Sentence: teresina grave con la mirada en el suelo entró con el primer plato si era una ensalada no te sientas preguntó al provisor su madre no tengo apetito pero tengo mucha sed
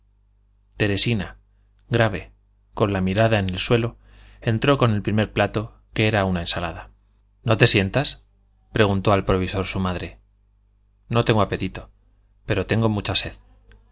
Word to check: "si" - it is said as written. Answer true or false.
false